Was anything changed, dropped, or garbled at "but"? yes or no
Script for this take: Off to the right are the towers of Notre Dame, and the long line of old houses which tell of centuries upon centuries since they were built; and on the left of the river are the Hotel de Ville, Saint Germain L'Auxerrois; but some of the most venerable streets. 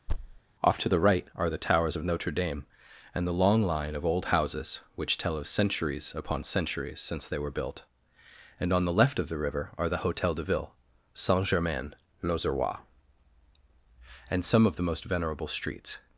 yes